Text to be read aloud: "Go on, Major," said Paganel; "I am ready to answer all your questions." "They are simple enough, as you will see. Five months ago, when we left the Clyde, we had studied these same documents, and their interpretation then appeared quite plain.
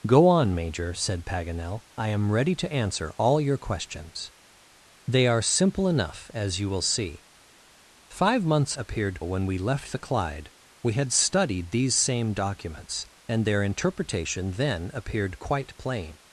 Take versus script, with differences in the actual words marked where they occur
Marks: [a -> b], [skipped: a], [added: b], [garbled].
"Go on, Major," said Paganel; "I am ready to answer all your questions." "They are simple enough, as you will see. Five months [ago, -> appeared] when we left the Clyde, we had studied these same documents, and their interpretation then appeared quite plain.